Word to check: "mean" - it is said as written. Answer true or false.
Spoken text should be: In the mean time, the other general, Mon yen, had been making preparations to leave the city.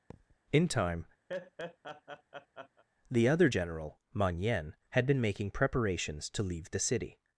false